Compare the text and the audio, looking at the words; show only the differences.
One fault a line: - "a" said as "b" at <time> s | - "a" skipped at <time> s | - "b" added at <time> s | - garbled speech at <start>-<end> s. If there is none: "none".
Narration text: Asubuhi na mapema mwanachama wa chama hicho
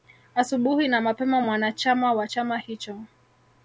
none